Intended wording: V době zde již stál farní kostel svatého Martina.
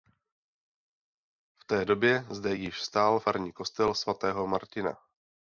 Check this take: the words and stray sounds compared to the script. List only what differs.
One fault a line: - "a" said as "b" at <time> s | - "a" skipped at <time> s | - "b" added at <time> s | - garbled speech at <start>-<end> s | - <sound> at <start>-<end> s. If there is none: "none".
- "té" added at 1.6 s